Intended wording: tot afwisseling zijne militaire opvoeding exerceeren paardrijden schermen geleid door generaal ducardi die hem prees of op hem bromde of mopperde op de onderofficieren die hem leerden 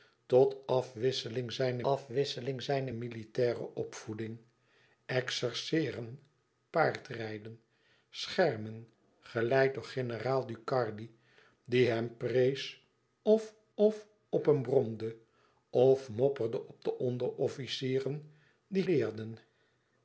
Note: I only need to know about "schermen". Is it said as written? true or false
true